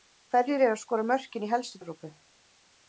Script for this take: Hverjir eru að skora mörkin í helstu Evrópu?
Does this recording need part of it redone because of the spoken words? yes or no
no